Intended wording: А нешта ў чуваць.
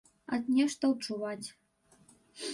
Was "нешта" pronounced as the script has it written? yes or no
yes